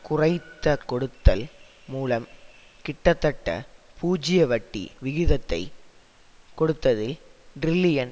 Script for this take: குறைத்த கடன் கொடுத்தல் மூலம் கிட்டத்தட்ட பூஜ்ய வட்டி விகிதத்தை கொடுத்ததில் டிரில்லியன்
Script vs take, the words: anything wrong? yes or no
yes